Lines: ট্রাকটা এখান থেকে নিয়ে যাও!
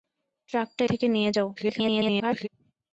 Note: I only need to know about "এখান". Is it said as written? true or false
false